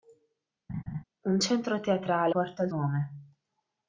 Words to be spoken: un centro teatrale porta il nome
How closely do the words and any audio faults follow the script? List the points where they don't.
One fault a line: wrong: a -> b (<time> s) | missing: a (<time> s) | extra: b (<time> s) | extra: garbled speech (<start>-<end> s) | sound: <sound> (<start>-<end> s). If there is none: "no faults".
sound: laugh (0.7-1.0 s)